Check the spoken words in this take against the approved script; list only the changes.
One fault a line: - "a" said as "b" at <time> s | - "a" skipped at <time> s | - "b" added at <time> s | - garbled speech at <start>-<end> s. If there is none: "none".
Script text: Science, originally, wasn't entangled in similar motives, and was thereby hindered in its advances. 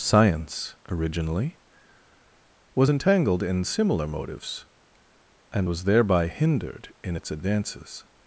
- "wasn't" said as "was" at 2.7 s